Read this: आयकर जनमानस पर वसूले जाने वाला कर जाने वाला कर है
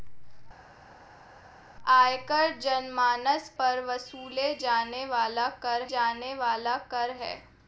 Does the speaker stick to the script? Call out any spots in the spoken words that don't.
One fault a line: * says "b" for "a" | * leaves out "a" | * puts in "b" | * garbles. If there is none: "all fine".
all fine